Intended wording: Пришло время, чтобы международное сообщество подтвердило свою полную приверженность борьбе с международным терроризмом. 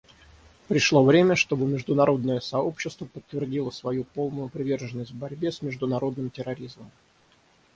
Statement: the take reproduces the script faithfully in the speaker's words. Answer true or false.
true